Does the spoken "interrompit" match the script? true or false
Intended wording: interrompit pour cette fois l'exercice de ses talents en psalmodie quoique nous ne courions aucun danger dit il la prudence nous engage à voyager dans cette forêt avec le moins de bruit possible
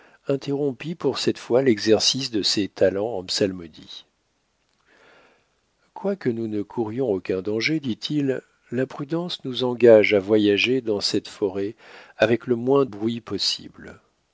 true